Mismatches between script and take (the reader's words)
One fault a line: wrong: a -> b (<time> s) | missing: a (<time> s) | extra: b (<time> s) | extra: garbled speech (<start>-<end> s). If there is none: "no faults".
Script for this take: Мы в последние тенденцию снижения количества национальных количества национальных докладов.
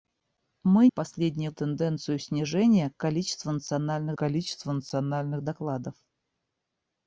no faults